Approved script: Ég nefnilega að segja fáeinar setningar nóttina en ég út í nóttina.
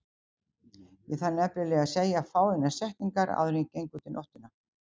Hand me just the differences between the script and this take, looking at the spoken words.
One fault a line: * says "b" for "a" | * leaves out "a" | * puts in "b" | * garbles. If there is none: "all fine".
* puts in "þarf"
* says "áður" for "nóttina"
* puts in "geng"